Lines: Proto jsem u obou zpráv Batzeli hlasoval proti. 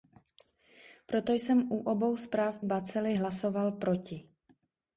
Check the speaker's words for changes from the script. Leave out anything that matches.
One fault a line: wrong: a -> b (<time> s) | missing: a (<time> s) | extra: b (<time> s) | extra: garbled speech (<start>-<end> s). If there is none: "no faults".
no faults